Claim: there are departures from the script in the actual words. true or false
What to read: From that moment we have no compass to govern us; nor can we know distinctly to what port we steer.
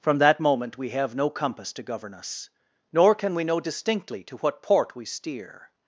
false